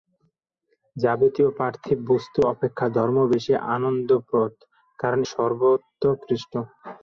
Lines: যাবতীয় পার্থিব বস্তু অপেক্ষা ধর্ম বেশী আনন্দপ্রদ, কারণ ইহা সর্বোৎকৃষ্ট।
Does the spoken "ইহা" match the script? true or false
false